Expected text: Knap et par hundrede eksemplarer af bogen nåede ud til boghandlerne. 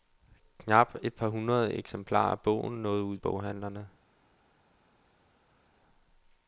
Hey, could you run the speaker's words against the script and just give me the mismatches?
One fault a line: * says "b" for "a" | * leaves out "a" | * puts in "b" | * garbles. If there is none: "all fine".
* leaves out "til"